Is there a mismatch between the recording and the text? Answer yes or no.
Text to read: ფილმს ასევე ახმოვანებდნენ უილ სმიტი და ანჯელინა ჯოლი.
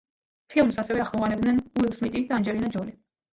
no